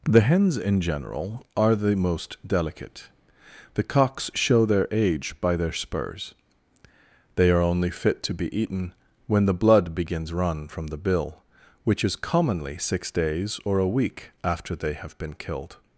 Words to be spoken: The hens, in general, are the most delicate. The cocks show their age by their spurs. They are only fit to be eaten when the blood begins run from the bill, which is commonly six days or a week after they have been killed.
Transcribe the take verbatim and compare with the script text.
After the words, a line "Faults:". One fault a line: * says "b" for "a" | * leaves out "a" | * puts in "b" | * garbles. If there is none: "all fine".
The hens, in general, are the most delicate. The cocks show their age by their spurs. They are only fit to be eaten when the blood begins run from the bill, which is commonly six days or a week after they have been killed.
Faults:
all fine